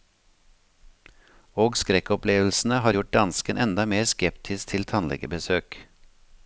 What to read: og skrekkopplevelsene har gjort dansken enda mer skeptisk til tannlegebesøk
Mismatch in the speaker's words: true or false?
false